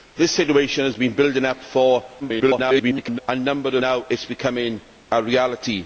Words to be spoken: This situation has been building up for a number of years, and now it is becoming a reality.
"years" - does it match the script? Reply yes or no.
no